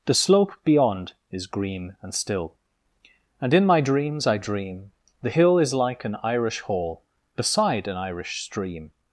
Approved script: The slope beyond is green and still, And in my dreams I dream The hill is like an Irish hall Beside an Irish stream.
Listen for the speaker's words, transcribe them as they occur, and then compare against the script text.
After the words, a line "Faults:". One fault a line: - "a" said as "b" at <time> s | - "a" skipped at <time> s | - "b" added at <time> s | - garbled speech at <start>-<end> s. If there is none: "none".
The slope beyond is green and still, And in my dreams I dream The hill is like an Irish hall Beside an Irish stream.
Faults:
none